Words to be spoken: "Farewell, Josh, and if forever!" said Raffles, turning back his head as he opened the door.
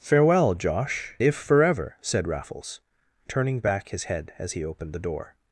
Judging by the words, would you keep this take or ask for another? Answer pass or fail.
fail